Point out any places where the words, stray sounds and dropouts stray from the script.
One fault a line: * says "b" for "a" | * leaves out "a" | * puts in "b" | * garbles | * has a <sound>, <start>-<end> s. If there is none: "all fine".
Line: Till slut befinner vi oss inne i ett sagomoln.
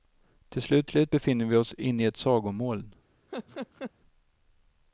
* puts in "slut"
* has a laugh, 3.3-3.9 s